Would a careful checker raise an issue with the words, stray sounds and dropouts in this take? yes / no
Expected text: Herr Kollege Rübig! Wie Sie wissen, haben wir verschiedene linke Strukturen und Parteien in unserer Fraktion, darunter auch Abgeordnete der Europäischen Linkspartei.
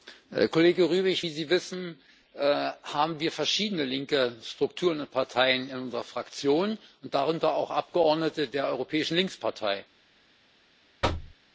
yes